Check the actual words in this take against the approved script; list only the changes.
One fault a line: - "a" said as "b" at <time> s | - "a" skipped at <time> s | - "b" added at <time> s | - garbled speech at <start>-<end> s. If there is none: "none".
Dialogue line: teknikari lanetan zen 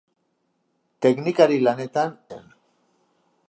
none